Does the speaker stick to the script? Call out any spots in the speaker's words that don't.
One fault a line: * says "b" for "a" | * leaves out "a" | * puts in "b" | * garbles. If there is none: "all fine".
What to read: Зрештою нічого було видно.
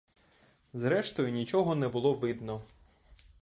* puts in "не"